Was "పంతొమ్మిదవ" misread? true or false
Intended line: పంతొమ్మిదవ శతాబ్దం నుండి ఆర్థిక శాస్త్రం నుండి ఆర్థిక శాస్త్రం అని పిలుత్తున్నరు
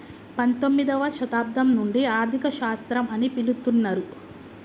false